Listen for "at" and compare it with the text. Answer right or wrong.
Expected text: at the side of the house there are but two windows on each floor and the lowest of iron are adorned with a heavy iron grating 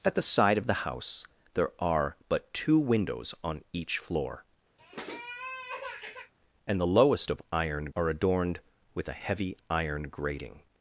right